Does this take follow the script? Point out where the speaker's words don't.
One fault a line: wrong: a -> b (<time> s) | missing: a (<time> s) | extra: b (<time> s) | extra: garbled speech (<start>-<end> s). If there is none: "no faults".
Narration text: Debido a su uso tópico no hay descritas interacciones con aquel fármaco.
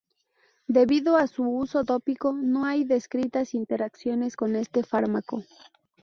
wrong: aquel -> este (4.6 s)